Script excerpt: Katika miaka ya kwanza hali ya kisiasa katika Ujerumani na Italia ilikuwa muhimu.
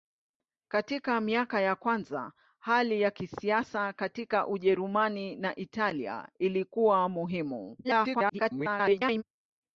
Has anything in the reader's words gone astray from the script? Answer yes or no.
yes